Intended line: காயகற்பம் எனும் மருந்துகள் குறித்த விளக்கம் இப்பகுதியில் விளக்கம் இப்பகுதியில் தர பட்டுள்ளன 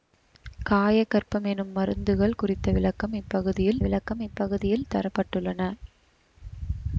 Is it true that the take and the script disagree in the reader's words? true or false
false